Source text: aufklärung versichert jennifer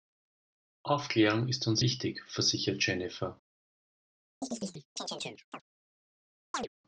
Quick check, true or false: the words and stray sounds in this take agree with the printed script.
false